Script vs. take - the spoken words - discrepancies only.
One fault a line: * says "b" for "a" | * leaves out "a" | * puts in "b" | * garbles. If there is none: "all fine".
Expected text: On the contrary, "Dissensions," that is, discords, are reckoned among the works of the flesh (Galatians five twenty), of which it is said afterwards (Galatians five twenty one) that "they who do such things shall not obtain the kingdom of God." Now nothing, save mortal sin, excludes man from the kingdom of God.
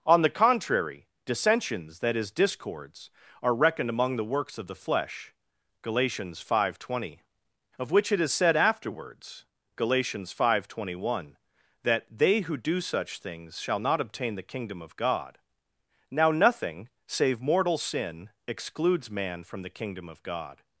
all fine